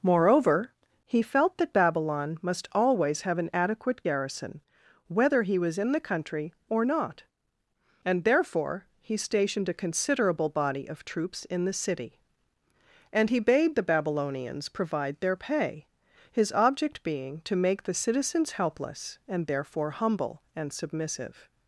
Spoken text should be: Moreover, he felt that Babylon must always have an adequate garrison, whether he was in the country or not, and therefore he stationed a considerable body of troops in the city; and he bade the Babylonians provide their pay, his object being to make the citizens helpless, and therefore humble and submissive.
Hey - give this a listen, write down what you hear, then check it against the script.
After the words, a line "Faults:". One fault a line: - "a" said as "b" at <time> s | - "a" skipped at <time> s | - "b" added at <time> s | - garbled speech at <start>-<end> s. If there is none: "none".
Moreover, he felt that Babylon must always have an adequate garrison, whether he was in the country or not, and therefore he stationed a considerable body of troops in the city; and he bade the Babylonians provide their pay, his object being to make the citizens helpless, and therefore humble and submissive.
Faults:
none